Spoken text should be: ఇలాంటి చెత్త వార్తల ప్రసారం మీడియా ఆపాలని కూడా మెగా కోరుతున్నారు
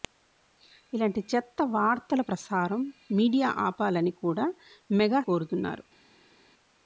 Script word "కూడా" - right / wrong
right